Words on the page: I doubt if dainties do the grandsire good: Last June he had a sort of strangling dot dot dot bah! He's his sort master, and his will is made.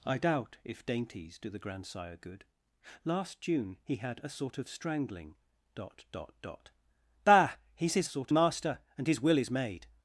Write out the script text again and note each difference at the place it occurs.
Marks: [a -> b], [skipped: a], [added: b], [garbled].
I doubt if dainties do the grandsire good: Last June he had a sort of strangling dot dot dot bah! He's his sort master, and his will is made.